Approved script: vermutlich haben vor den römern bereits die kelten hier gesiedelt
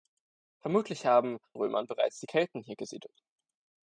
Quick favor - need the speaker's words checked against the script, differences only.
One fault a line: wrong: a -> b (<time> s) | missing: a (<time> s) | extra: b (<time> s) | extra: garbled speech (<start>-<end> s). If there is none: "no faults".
missing: vor den (1.4 s)